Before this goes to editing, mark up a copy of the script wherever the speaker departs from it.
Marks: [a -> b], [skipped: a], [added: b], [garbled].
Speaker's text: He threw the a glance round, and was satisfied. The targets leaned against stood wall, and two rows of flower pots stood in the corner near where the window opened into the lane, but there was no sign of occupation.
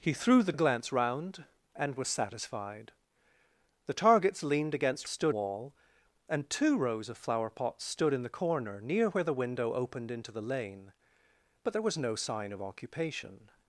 He threw the a glance round, and was satisfied. The targets leaned against stood wall, and two rows of flower pots stood in the corner near where the window opened into the lane, but there was no sign of occupation.